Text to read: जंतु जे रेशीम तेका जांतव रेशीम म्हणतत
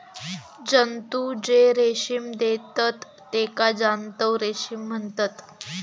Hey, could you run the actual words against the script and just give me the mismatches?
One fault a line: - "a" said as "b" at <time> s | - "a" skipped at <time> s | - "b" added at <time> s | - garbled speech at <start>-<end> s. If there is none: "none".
- "देतत" added at 2.4 s